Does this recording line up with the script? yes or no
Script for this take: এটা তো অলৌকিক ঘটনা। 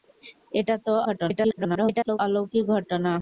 no